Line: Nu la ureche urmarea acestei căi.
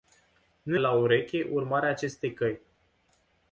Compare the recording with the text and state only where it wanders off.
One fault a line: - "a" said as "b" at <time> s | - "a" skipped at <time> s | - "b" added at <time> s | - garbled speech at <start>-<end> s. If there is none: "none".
none